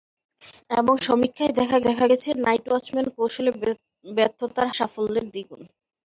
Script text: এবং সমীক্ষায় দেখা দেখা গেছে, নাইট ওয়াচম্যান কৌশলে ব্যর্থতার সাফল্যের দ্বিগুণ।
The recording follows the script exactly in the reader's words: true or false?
true